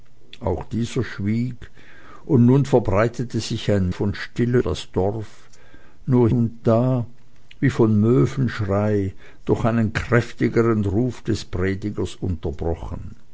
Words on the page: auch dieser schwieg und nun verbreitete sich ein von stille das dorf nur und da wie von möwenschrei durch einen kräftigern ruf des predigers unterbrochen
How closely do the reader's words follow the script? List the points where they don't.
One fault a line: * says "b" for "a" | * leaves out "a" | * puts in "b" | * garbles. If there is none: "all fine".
all fine